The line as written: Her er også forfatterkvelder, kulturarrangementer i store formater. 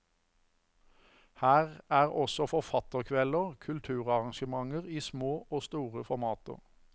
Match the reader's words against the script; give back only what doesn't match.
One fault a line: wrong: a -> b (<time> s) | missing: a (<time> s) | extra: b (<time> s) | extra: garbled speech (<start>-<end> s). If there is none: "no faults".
extra: små og (5.0 s)